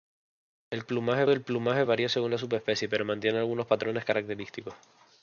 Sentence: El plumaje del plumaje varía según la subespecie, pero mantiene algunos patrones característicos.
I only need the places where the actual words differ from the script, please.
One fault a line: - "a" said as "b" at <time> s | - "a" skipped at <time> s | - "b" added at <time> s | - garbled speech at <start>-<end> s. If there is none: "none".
none